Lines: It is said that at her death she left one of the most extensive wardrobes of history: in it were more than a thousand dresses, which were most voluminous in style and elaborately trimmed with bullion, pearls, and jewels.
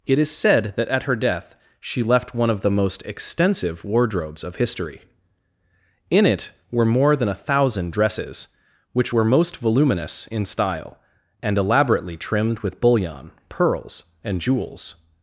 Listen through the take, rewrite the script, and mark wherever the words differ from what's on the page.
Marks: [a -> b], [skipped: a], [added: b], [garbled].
It is said that at her death she left one of the most extensive wardrobes of history: in it were more than a thousand dresses, which were most voluminous in style and elaborately trimmed with bullion, pearls, and jewels.